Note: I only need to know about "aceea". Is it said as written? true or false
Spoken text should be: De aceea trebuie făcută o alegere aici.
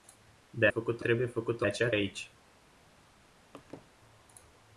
false